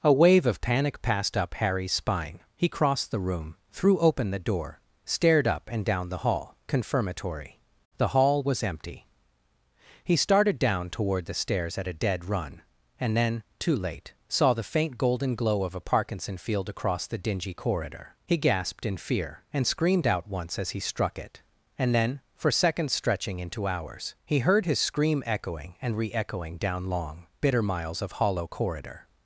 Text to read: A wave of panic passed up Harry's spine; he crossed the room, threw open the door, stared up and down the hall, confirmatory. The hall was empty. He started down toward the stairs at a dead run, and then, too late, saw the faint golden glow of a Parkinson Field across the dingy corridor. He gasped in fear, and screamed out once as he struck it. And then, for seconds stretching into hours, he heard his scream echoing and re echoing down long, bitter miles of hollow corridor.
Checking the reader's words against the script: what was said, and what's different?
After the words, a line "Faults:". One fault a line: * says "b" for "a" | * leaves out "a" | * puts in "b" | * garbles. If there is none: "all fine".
A wave of panic passed up Harry's spine; he crossed the room, threw open the door, stared up and down the hall, confirmatory. The hall was empty. He started down toward the stairs at a dead run, and then, too late, saw the faint golden glow of a Parkinson Field across the dingy corridor. He gasped in fear, and screamed out once as he struck it. And then, for seconds stretching into hours, he heard his scream echoing and re echoing down long, bitter miles of hollow corridor.
Faults:
all fine